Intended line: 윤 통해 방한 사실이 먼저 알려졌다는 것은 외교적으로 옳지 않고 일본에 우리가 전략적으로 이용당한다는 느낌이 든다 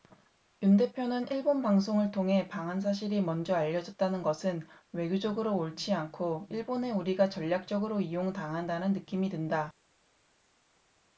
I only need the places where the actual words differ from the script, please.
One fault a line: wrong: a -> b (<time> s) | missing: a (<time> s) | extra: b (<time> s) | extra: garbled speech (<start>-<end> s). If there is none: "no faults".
extra: 대표는 일본 방송을 (0.8 s)